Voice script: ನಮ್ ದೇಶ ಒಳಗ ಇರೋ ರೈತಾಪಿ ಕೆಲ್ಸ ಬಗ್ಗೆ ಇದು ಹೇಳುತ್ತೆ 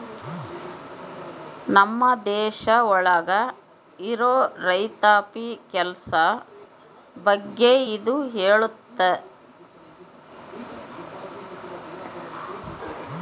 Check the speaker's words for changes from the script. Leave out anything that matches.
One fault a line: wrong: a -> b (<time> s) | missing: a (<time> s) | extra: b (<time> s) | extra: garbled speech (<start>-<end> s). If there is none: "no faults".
no faults